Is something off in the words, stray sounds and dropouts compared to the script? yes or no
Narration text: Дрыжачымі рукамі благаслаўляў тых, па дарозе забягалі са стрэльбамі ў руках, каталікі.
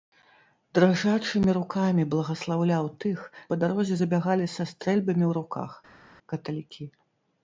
no